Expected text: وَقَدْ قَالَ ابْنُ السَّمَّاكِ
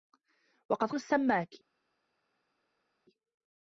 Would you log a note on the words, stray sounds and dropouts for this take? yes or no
yes